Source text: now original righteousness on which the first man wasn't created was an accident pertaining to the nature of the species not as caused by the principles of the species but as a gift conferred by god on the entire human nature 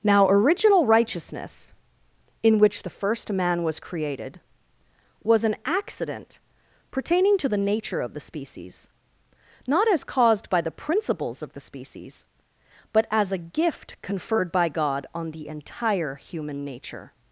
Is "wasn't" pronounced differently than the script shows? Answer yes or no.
yes